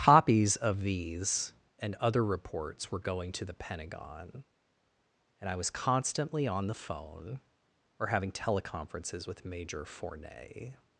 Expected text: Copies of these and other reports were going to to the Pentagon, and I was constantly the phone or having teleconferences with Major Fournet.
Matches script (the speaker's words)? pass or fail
fail